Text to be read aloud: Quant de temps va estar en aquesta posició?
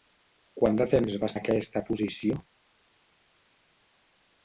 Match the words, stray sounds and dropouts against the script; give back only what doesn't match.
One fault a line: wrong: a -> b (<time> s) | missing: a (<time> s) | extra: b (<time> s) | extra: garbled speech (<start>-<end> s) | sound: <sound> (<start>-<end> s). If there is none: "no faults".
missing: estar (1.3 s)